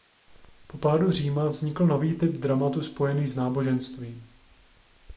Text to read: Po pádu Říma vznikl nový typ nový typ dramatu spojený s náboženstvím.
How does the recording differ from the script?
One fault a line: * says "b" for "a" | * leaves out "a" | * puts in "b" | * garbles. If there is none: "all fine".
* leaves out "nový typ"